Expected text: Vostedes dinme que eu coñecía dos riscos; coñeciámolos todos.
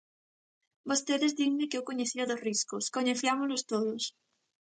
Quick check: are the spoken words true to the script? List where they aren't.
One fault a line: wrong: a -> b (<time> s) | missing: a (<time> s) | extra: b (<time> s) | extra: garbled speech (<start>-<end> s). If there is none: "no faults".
no faults